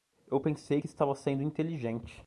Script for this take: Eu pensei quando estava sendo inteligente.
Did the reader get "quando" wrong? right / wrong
wrong